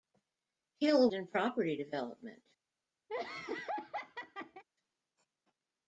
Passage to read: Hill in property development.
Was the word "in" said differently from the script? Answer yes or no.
no